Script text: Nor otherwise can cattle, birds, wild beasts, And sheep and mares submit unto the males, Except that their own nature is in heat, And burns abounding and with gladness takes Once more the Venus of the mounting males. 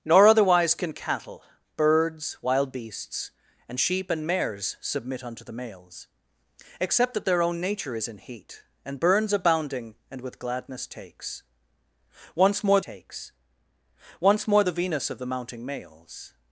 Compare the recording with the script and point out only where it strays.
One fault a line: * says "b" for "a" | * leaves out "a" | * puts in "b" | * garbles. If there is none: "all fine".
* puts in "takes Once more"